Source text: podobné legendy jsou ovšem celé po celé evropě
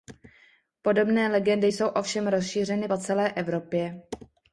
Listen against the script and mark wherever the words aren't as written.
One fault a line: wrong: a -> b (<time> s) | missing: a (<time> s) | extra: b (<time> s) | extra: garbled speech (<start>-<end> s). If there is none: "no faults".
wrong: celé -> rozšířeny (2.3 s)